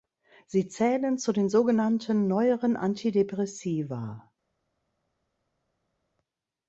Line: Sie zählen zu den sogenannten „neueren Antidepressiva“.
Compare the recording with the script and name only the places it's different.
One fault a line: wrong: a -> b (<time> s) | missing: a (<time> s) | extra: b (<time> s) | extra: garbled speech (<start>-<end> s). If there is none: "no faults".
no faults